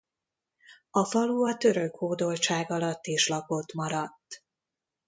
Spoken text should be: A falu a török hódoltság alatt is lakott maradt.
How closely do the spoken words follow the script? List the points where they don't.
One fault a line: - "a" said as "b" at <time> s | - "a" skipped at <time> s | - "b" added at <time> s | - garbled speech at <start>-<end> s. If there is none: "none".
none